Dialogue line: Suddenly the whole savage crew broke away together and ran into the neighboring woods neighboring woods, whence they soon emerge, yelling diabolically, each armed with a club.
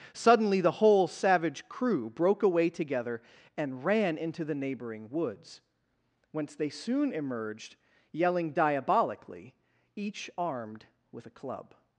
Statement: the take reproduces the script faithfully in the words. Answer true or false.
false